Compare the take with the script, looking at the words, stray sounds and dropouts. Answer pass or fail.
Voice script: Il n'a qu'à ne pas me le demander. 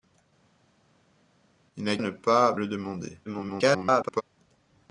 fail